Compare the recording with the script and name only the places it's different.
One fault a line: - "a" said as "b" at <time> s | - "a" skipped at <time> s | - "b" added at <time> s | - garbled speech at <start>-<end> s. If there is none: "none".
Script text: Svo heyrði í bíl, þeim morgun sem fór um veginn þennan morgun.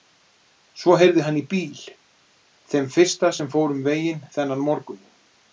- "hann" added at 1.2 s
- "morgun" said as "fyrsta" at 3.0 s